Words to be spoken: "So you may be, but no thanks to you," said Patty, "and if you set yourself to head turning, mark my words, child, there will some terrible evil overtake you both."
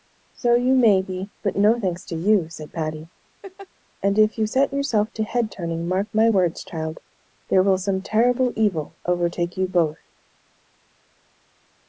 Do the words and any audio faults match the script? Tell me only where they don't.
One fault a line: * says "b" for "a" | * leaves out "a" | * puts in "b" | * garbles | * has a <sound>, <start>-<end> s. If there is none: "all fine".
* has a laugh, 3.4-3.7 s